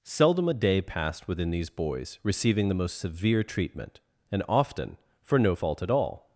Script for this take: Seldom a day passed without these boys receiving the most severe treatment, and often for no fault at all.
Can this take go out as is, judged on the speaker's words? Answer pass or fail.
fail